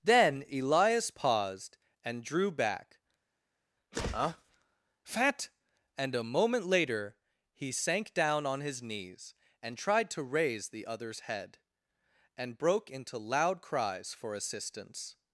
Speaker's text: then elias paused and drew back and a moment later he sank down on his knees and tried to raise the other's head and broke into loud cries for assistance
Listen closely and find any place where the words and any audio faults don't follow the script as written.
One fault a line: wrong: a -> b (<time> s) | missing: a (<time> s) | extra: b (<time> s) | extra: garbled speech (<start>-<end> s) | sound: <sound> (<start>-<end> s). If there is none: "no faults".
extra: huh fat (3.9 s)